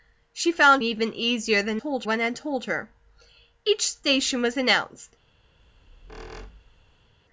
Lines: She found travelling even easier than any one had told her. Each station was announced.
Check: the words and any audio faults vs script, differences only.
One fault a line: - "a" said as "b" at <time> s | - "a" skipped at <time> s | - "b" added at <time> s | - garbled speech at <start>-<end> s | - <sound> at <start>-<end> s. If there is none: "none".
- "travelling" skipped at 0.8 s
- "any" said as "told" at 1.7 s
- squeak at 5.6-7.1 s